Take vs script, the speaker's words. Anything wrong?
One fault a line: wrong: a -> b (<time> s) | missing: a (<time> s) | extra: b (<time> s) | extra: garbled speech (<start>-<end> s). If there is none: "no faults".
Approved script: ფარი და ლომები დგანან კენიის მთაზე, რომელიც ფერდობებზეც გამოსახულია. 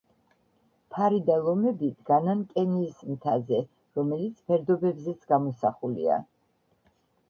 no faults